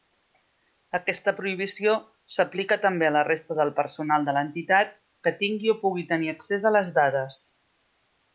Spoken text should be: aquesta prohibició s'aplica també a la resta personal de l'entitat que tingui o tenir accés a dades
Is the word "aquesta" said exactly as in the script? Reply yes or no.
yes